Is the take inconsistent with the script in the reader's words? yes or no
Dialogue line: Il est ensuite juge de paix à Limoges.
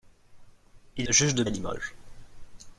yes